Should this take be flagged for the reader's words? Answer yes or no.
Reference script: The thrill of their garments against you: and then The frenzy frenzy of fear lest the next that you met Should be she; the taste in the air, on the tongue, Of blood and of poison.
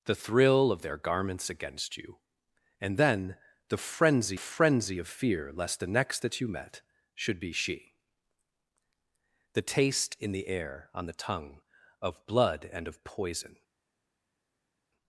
no